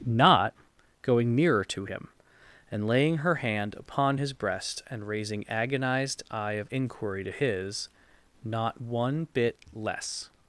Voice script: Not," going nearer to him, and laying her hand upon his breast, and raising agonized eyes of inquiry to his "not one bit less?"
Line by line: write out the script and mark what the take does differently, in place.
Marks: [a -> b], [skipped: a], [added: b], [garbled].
Not," going nearer to him, and laying her hand upon his breast, and raising agonized [eyes -> eye] of inquiry to his "not one bit less?"